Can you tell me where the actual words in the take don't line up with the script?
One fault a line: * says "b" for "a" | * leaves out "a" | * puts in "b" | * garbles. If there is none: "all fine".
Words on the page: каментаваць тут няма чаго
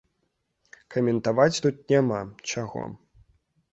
all fine